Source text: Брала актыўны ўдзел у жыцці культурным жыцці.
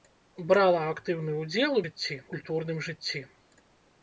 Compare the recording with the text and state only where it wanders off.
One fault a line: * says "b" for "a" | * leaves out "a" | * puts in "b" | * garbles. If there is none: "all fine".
all fine